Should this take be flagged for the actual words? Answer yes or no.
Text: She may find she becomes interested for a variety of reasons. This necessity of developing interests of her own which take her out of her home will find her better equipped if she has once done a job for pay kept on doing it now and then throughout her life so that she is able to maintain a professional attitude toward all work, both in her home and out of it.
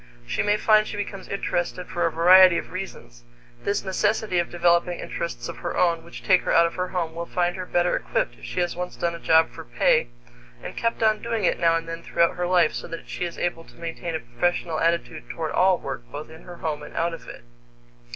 yes